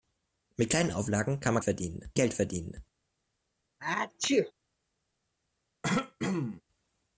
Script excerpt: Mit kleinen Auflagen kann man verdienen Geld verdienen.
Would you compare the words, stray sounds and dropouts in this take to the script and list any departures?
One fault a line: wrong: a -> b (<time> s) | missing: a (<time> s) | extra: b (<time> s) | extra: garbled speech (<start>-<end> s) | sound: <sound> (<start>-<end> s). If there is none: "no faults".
sound: sneeze (3.8-4.5 s)
sound: throat clearing (5.8-6.6 s)